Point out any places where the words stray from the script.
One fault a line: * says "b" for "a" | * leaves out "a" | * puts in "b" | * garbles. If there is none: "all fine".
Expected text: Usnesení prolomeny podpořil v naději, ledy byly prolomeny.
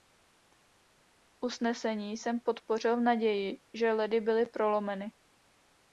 * says "jsem" for "prolomeny"
* puts in "že"